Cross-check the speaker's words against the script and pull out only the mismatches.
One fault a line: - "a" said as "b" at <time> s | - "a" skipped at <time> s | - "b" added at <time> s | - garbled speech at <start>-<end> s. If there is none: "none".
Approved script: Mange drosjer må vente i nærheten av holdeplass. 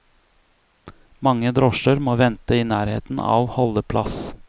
none